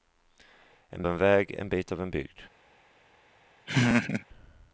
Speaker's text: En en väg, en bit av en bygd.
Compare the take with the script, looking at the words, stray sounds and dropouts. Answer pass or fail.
fail